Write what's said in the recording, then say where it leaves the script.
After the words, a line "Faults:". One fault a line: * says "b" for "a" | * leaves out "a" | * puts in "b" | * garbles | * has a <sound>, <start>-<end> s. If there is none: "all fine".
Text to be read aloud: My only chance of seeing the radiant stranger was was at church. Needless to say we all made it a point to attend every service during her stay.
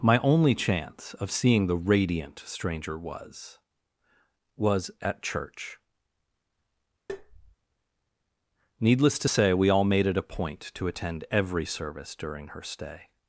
My only chance of seeing the radiant stranger was was at church. Needless to say we all made it a point to attend every service during her stay.
Faults:
* has a tap, 7.1-7.6 s